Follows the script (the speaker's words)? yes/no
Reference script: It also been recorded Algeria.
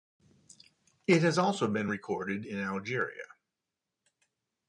no